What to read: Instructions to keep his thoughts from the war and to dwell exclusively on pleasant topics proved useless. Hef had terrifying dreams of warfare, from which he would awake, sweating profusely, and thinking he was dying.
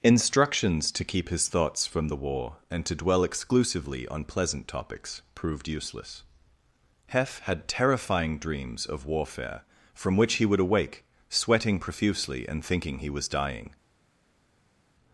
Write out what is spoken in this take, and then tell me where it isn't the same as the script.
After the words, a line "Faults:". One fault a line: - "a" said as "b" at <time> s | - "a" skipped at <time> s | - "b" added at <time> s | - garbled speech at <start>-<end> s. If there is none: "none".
Instructions to keep his thoughts from the war and to dwell exclusively on pleasant topics proved useless. Hef had terrifying dreams of warfare, from which he would awake, sweating profusely, and thinking he was dying.
Faults:
none